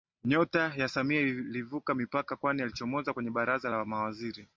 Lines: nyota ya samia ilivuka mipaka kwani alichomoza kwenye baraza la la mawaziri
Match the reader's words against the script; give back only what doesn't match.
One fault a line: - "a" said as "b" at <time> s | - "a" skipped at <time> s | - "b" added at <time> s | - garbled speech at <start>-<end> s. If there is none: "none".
- "la" skipped at 3.9 s